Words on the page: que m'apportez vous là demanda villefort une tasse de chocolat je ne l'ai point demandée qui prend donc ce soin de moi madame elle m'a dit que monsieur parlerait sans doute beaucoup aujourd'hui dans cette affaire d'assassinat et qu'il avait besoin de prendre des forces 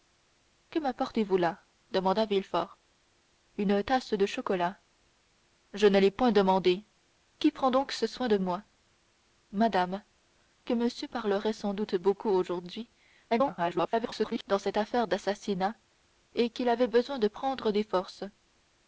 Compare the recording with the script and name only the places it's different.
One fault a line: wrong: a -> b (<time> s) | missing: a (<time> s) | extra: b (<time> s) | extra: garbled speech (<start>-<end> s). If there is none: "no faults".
missing: elle m'a dit (10.0 s)
extra: garbled speech (13.3-14.4 s)